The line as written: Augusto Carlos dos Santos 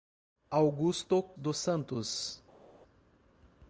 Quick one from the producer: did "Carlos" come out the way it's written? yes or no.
no